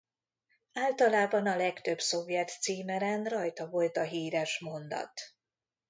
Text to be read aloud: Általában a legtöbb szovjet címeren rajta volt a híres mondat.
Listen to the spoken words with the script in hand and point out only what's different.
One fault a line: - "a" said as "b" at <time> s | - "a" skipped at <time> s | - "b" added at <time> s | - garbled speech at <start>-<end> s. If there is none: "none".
none